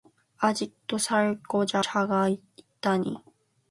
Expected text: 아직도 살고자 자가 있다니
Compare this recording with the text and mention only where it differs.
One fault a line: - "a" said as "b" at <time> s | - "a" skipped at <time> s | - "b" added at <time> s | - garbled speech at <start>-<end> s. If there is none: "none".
none